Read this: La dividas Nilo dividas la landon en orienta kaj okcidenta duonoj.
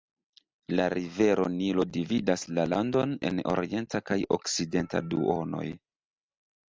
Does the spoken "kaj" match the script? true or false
true